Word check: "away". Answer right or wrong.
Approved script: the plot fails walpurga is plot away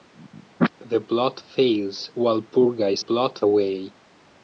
right